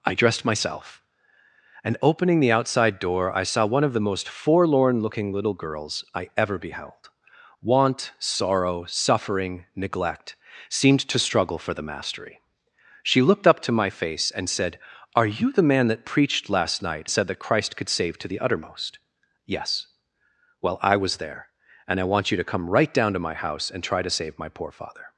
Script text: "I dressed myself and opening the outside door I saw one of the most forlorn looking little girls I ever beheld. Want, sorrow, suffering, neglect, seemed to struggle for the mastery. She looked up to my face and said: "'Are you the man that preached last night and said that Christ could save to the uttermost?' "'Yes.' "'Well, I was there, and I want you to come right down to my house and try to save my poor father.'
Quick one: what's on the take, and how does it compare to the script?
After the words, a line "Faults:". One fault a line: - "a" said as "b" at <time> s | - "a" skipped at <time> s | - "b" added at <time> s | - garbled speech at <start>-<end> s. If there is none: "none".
"I dressed myself and opening the outside door I saw one of the most forlorn looking little girls I ever beheld. Want, sorrow, suffering, neglect, seemed to struggle for the mastery. She looked up to my face and said: "'Are you the man that preached last night said that Christ could save to the uttermost?' "'Yes.' "'Well, I was there, and I want you to come right down to my house and try to save my poor father.'
Faults:
- "and" skipped at 17.1 s